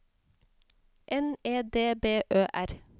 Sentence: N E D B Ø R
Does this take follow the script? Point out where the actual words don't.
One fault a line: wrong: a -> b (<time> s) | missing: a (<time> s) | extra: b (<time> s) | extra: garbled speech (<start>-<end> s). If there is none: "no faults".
no faults